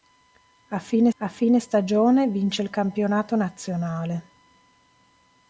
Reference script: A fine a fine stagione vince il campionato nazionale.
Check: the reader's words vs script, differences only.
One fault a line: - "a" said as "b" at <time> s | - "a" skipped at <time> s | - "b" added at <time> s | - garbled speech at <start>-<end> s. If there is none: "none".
none